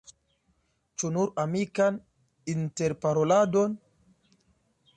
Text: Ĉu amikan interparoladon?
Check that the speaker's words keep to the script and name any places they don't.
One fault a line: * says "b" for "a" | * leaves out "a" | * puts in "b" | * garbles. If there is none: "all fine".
* puts in "nur"